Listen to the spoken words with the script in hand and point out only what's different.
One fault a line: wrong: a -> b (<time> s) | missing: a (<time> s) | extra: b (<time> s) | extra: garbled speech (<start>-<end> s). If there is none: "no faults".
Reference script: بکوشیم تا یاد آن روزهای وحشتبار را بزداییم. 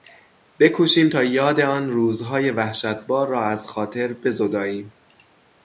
extra: از خاطر (3.4 s)